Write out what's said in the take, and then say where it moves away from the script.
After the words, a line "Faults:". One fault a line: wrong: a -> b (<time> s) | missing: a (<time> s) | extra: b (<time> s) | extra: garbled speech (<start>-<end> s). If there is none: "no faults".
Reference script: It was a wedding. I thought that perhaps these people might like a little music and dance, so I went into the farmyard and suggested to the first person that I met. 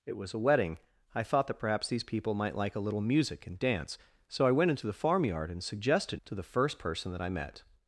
It was a wedding. I thought that perhaps these people might like a little music and dance, so I went into the farmyard and suggested to the first person that I met.
Faults:
no faults